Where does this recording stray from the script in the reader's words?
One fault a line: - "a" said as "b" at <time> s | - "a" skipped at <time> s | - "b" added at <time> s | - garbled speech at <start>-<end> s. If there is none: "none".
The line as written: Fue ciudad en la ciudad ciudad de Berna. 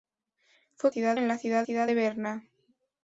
none